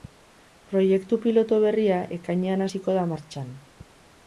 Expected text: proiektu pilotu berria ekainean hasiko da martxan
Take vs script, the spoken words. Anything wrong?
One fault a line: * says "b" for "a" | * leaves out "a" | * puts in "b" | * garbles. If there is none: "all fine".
all fine